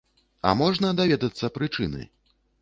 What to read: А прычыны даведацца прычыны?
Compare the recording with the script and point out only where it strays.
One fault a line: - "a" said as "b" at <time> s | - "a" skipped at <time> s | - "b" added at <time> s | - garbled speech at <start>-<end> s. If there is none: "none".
- "прычыны" said as "можна" at 0.6 s